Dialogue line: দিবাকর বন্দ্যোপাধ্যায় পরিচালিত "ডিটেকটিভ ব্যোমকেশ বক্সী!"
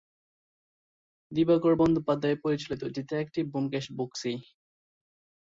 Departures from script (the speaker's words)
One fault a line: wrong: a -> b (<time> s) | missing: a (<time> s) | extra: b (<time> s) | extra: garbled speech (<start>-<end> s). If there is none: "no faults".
no faults